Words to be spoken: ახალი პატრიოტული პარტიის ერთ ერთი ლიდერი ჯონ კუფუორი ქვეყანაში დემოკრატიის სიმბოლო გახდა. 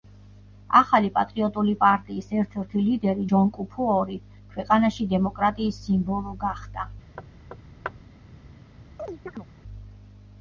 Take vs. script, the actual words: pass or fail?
pass